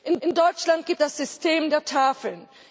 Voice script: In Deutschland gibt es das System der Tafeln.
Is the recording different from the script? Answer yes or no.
yes